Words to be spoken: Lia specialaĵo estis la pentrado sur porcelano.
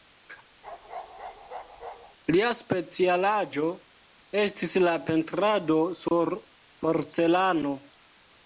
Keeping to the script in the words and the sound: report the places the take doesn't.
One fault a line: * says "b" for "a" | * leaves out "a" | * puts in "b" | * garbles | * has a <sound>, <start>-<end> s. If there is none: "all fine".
* has a bark, 0.6-2.2 s
* has a dropout, 6.1-6.1 s